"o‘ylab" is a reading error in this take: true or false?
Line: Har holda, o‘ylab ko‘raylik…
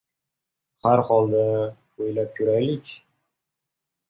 false